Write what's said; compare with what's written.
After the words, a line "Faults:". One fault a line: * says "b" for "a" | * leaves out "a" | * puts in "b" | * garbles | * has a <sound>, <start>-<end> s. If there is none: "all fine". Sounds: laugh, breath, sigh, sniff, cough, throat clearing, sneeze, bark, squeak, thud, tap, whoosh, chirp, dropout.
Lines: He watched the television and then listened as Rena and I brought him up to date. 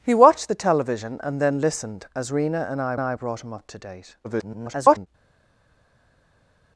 He watched the television and then listened as Rena and I I brought him up to date. [garbled]
Faults:
* puts in "I"
* garbles